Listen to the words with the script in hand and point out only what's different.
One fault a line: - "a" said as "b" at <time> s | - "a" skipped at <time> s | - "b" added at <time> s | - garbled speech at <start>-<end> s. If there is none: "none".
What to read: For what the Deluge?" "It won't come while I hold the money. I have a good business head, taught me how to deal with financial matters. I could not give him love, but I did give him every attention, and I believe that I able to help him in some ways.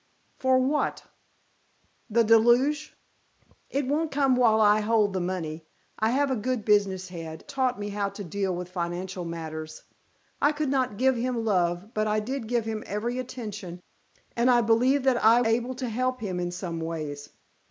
none